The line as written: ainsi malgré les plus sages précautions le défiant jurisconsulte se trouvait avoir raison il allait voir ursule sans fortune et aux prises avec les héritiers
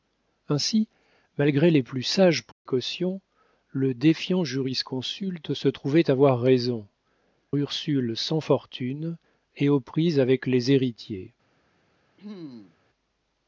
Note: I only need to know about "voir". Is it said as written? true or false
false